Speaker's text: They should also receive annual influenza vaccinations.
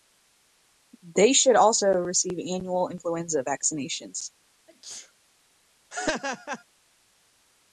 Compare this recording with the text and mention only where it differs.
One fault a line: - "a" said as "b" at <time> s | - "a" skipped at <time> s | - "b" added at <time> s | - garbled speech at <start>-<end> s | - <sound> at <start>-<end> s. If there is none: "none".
- sneeze at 4.7-5.1 s
- laugh at 5.9-6.6 s